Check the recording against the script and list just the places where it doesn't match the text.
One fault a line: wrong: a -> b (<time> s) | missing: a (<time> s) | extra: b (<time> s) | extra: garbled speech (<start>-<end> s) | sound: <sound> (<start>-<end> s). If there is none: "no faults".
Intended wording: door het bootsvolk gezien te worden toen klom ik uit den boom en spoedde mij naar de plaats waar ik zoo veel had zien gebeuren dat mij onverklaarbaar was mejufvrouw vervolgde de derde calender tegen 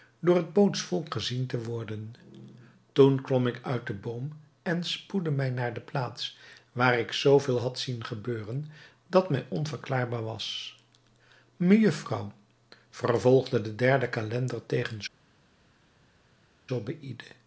no faults